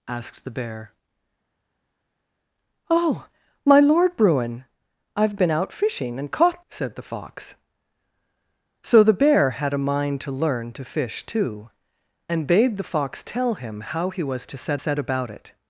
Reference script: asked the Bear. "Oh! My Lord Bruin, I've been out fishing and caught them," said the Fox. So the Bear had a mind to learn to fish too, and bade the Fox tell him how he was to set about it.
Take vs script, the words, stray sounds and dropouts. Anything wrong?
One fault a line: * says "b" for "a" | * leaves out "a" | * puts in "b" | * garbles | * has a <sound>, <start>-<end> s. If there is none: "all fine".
* leaves out "them"
* puts in "set"